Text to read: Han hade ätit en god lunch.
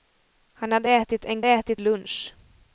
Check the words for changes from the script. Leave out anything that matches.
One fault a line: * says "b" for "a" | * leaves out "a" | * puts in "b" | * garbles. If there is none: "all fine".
* says "ätit" for "god"